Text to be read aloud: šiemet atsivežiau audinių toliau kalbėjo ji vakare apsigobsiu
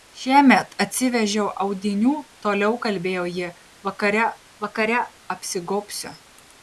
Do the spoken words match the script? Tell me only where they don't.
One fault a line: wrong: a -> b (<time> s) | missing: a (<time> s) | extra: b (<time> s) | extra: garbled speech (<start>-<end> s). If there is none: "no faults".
extra: vakare (4.7 s)